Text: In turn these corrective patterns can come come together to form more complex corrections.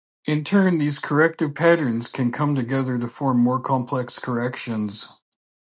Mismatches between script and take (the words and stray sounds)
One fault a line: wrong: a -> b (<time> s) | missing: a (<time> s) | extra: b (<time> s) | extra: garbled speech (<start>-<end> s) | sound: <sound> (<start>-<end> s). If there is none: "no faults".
missing: come (2.5 s)